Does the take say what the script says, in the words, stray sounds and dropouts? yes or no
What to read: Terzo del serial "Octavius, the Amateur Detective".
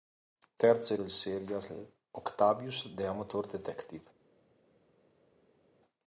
yes